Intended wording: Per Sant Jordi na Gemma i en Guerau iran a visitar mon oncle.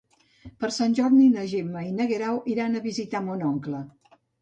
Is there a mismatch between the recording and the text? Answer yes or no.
no